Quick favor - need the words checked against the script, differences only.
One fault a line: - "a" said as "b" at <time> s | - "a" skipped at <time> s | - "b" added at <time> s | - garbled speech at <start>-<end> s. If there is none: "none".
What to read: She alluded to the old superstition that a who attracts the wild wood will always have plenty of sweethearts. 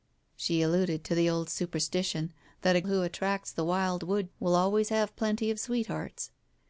none